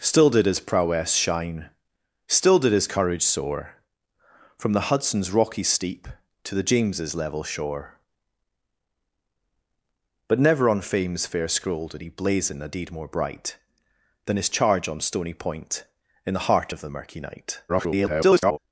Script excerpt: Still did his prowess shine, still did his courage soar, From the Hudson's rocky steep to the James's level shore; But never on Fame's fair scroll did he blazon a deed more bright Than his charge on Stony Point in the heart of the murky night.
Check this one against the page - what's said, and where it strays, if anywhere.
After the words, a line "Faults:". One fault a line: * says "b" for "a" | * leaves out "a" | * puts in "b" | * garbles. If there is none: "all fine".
Still did his prowess shine, still did his courage soar, From the Hudson's rocky steep to the James's level shore; But never on Fame's fair scroll did he blazon a deed more bright Than his charge on Stony Point in the heart of the murky night. [garbled]
Faults:
* garbles